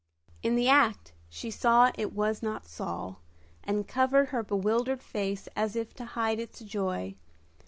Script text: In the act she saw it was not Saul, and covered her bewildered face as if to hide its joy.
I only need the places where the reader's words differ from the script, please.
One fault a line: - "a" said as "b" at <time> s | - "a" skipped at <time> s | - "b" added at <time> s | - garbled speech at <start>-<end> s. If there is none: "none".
none